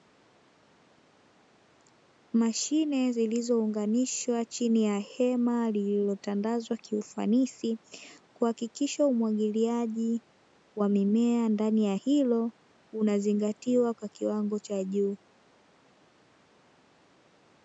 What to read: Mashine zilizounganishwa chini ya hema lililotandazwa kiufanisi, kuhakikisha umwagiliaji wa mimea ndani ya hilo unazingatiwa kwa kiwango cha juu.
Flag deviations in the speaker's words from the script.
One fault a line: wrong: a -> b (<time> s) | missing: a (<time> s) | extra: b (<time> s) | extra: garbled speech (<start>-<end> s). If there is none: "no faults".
no faults